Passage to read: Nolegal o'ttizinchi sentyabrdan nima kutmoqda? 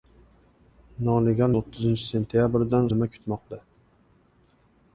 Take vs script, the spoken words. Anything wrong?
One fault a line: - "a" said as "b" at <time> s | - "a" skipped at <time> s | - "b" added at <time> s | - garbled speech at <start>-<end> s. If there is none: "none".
none